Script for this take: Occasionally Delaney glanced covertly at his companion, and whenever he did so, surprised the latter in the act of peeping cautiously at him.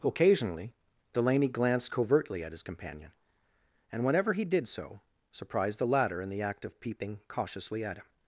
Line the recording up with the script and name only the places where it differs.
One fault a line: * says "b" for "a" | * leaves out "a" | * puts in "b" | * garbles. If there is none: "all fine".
all fine